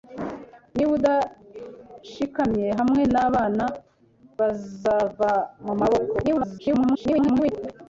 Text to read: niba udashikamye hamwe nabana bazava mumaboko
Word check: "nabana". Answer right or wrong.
right